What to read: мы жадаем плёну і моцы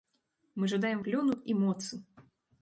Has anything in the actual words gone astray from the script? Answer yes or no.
no